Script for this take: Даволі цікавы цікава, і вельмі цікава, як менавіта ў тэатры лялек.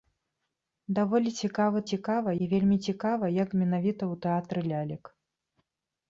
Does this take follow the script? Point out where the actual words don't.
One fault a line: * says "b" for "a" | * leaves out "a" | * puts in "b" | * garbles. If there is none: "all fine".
all fine